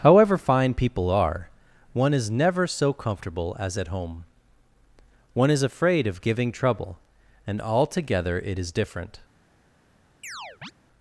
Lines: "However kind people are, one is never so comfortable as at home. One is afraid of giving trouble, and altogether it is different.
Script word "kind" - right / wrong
wrong